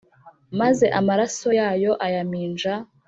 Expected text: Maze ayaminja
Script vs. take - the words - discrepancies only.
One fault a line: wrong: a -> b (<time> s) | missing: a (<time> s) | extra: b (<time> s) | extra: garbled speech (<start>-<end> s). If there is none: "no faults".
extra: amaraso yayo (1.0 s)